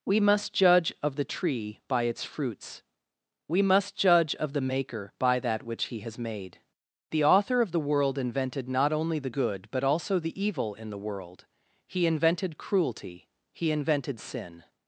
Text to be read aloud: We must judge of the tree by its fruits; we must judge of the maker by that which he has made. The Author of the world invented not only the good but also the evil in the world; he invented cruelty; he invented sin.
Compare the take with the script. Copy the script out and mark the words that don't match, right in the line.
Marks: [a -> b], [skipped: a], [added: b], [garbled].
We must judge of the tree by its fruits; we must judge of the maker by that which he has made. The Author of the world invented not only the good but also the evil in the world; he invented cruelty; he invented sin.